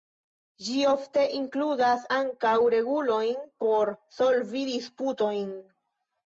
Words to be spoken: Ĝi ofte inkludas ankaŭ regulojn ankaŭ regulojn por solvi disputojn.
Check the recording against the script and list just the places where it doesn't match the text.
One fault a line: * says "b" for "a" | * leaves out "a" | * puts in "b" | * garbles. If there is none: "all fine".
* leaves out "ankaŭ regulojn"